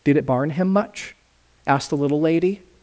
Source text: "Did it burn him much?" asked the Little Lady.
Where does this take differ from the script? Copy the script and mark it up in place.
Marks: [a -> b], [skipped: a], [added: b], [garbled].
"Did it [burn -> barn] him much?" asked the Little Lady.